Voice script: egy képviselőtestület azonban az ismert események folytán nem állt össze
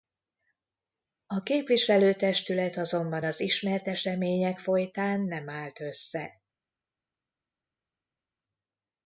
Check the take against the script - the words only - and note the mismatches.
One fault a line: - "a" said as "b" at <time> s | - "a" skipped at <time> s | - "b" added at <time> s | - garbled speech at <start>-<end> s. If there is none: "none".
- "egy" said as "a" at 1.2 s